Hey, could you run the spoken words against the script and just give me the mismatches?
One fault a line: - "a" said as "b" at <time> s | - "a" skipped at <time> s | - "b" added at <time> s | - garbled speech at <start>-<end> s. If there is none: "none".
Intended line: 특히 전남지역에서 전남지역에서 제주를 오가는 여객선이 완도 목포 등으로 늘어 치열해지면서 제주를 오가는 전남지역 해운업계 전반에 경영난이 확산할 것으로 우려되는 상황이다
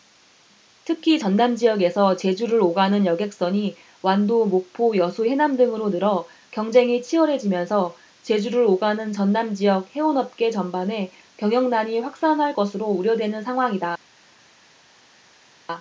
- "전남지역에서" skipped at 2.2 s
- "여수 해남" added at 5.0 s
- "경쟁이" added at 6.5 s